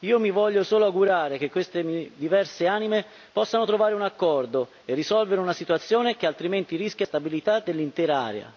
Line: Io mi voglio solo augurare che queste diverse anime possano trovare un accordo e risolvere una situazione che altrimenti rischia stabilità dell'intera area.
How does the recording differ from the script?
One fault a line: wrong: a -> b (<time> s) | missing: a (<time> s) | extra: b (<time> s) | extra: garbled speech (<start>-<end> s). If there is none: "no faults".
no faults